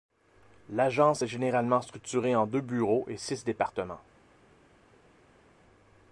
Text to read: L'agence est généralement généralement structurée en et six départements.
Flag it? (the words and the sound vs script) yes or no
yes